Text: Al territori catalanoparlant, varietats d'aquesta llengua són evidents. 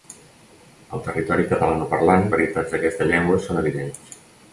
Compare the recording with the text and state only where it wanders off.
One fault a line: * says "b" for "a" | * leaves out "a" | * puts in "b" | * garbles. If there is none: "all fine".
all fine